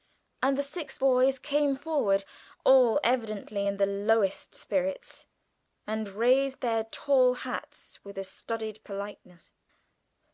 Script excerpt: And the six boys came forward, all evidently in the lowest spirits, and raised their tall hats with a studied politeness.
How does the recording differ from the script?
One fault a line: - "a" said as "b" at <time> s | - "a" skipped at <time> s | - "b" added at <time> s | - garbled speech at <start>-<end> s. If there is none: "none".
none